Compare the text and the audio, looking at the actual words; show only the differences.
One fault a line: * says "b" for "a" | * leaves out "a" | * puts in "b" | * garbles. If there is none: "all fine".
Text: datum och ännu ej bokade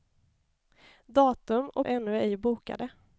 all fine